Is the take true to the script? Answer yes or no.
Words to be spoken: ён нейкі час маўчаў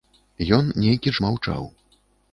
no